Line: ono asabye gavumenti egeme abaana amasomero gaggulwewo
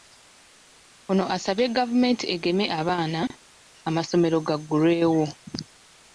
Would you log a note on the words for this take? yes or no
no